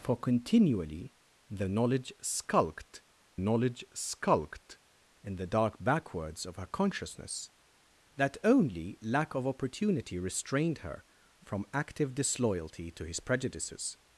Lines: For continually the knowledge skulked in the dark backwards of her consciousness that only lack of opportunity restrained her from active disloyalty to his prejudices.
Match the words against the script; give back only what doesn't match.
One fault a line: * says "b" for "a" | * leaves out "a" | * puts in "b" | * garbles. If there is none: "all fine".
* puts in "knowledge skulked"